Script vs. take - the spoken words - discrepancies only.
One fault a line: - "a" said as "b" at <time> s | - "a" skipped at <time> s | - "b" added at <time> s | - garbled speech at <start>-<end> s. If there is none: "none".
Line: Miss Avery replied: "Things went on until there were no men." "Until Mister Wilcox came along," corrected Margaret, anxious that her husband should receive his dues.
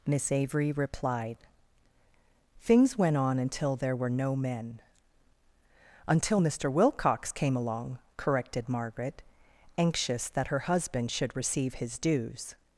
none